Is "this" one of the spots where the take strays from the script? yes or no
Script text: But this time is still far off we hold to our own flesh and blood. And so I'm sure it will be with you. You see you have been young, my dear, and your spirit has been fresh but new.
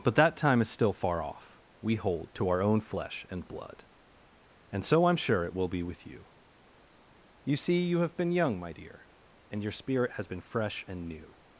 yes